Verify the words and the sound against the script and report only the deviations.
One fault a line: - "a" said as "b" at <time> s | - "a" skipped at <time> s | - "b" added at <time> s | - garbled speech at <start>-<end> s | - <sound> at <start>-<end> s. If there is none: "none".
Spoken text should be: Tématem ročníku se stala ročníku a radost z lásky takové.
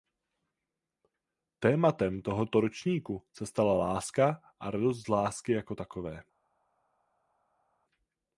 - "tohoto" added at 2.2 s
- "ročníku" said as "láska" at 3.7 s
- "jako" added at 5.5 s